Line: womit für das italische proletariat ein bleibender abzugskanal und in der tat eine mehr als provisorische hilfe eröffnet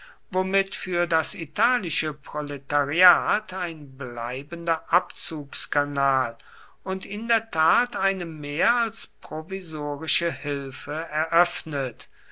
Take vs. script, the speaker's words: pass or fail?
pass